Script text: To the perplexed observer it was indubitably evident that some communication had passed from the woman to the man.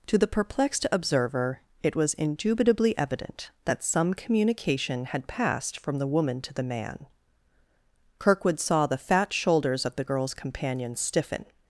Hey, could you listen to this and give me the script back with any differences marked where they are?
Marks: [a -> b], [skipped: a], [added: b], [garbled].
To the perplexed observer it was indubitably evident that some communication had passed from the woman to the man. [added: Kirkwood saw the fat shoulders of the girl's companion stiffen]